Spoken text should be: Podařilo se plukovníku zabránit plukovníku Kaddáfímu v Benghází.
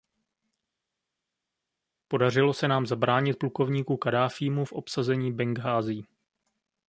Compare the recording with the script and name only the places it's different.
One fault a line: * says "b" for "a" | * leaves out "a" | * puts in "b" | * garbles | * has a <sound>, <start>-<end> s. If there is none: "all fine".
* says "nám" for "plukovníku"
* puts in "obsazení"